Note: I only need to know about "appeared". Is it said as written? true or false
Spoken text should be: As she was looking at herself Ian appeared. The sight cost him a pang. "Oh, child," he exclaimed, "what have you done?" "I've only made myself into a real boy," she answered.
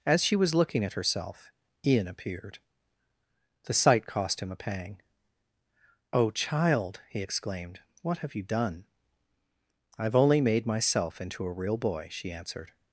true